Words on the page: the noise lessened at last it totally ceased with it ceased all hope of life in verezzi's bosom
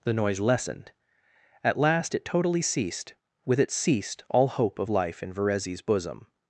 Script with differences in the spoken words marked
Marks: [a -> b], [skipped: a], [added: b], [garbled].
the noise lessened at last it totally ceased with it ceased all hope of life in verezzi's bosom